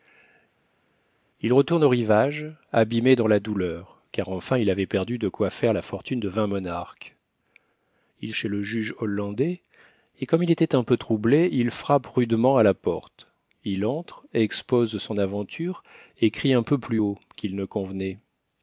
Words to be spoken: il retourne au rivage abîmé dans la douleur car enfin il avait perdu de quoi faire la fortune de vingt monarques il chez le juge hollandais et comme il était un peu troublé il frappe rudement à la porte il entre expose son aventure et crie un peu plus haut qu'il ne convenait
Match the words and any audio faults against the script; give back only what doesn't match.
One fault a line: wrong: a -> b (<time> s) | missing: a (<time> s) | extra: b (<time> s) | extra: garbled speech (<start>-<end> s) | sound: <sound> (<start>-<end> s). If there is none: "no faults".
no faults